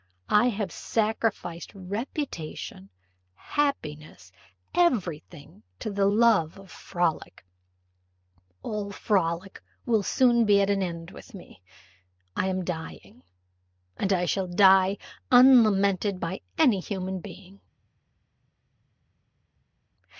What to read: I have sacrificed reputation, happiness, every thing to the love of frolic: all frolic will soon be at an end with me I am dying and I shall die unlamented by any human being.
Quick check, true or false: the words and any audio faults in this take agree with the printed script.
true